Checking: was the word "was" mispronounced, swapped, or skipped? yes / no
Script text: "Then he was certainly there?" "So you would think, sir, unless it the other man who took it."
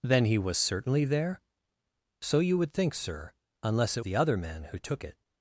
no